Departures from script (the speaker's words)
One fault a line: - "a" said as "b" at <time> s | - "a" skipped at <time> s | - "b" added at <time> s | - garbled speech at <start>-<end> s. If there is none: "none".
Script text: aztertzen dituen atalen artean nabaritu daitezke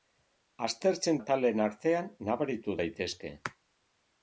- "dituen" skipped at 1.2 s